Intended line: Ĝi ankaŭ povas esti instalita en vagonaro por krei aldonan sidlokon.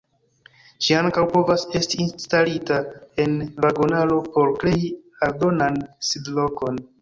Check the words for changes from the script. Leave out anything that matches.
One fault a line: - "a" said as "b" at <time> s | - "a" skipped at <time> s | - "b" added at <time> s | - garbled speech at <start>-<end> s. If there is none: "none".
none